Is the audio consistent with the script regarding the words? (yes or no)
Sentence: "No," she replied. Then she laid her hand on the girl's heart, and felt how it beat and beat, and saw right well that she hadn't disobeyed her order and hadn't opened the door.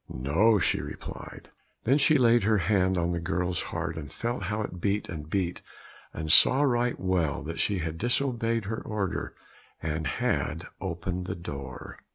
no